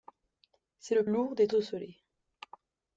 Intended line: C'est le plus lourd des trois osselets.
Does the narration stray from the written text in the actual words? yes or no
yes